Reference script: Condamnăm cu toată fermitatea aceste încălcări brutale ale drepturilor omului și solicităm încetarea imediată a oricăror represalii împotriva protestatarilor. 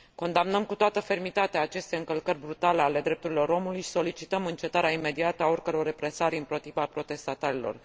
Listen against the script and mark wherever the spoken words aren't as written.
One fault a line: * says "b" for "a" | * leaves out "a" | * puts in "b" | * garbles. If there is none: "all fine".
all fine